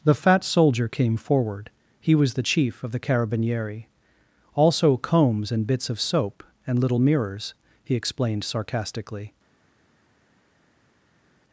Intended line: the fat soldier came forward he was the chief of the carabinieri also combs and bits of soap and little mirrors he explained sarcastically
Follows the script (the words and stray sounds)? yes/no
yes